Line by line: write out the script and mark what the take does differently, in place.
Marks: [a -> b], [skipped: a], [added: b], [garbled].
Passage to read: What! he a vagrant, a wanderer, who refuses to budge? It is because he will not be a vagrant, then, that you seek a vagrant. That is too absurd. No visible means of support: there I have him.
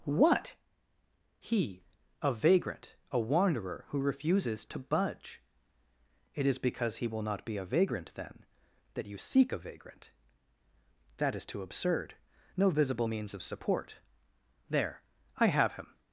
What! he a vagrant, a wanderer, who refuses to budge? It is because he will not be a vagrant, then, that you seek a vagrant. That is too absurd. No visible means of support: there I have him.